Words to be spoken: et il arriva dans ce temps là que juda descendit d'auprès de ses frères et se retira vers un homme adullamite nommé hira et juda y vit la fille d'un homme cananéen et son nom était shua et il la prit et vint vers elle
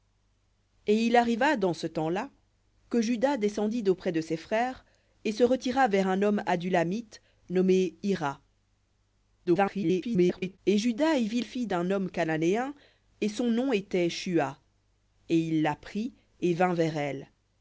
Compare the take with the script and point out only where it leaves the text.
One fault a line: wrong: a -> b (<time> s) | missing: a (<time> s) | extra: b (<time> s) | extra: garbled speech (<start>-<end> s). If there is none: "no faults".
extra: garbled speech (9.5-10.6 s)
missing: la (11.4 s)